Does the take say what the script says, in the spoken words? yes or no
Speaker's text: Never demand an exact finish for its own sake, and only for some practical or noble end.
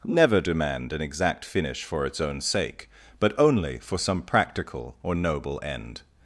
no